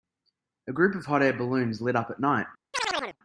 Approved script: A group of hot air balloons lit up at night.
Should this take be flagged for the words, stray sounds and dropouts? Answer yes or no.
yes